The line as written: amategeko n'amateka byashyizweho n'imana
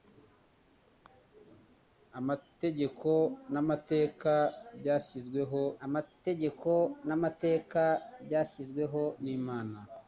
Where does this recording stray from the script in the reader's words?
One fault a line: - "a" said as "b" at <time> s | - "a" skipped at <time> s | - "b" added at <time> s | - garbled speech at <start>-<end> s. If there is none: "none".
- "amategeko n'amateka byashyizweho" added at 5.9 s